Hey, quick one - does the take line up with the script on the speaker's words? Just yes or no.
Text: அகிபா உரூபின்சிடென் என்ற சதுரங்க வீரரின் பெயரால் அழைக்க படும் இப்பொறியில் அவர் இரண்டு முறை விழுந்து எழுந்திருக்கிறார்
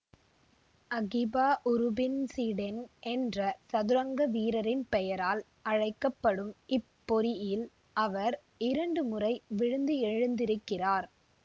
yes